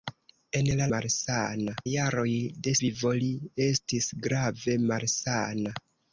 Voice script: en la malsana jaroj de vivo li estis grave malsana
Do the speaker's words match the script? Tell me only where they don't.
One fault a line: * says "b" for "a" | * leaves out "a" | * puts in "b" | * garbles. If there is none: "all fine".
all fine